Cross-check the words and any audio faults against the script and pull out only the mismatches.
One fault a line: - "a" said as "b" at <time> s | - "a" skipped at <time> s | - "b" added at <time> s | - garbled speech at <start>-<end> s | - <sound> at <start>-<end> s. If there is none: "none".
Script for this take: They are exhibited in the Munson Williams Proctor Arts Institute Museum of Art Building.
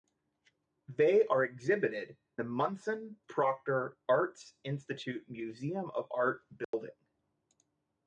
- "in" skipped at 2.2 s
- "Williams" skipped at 3.2 s
- dropout at 6.6-6.7 s